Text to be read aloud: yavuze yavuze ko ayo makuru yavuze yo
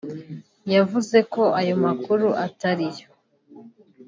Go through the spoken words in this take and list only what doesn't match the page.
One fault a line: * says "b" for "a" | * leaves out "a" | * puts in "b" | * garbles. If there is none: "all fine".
* leaves out "yavuze"
* says "atari" for "yavuze"